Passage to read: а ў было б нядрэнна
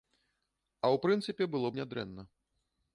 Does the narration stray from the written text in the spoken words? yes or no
yes